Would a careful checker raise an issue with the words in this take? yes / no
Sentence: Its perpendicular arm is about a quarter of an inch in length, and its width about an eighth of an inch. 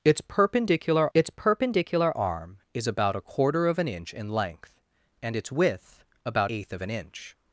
yes